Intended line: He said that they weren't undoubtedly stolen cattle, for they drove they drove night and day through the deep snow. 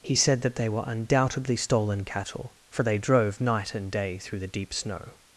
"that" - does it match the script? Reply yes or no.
yes